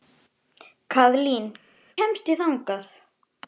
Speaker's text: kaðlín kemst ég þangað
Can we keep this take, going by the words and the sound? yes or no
yes